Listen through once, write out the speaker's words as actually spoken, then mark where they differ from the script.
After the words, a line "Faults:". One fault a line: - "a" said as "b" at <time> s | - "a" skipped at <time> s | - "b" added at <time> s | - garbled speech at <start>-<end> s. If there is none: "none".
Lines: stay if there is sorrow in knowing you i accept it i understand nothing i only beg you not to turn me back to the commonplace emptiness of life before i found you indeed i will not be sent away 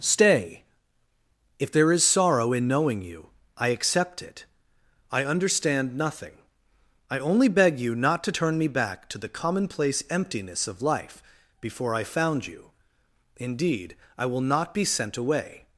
stay if there is sorrow in knowing you i accept it i understand nothing i only beg you not to turn me back to the commonplace emptiness of life before i found you indeed i will not be sent away
Faults:
none